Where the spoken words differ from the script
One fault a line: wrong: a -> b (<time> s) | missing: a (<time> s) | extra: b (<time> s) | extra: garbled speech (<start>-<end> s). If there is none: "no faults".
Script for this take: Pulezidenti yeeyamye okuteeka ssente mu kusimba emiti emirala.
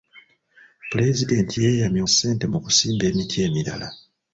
missing: okuteeka (2.0 s)